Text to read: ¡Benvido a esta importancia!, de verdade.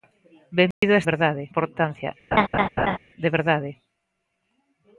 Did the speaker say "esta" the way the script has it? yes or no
no